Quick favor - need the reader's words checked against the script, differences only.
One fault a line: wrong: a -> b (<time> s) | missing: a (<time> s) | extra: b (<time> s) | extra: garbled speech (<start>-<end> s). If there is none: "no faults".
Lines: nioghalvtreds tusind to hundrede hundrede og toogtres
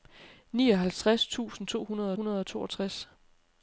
no faults